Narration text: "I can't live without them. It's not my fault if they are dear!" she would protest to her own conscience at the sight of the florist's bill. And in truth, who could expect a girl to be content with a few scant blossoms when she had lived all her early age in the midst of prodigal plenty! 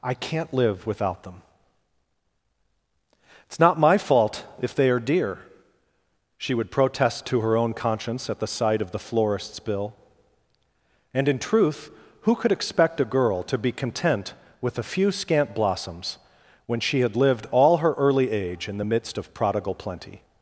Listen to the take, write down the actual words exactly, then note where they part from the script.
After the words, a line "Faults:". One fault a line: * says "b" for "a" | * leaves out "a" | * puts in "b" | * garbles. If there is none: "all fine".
"I can't live without them. It's not my fault if they are dear!" she would protest to her own conscience at the sight of the florist's bill. And in truth, who could expect a girl to be content with a few scant blossoms when she had lived all her early age in the midst of prodigal plenty!
Faults:
all fine